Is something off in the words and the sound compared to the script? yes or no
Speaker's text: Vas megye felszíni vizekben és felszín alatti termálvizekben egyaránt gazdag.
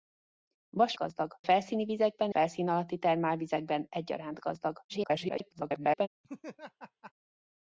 yes